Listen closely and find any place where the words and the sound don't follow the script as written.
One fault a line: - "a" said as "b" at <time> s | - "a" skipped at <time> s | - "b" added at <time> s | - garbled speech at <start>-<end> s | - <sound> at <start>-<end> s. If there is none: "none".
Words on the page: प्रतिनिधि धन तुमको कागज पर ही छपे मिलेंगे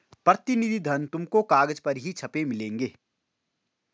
none